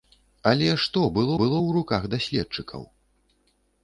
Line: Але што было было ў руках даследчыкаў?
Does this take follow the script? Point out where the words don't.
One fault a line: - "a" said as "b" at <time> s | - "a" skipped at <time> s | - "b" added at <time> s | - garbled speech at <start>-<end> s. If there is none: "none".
none